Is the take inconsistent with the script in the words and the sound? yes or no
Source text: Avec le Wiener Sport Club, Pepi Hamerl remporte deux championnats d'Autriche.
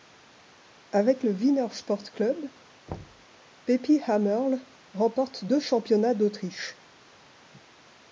yes